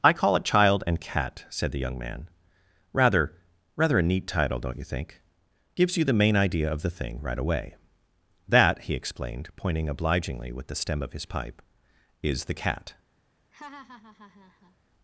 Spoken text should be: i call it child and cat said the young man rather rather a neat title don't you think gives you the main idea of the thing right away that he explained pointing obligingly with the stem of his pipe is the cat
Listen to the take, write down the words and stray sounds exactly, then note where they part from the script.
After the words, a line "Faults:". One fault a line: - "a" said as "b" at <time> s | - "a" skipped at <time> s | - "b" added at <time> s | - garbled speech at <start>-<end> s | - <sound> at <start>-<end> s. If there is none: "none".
i call it child and cat said the young man rather rather a neat title don't you think gives you the main idea of the thing right away that he explained pointing obligingly with the stem of his pipe is the cat
Faults:
- laugh at 13.5-14.8 s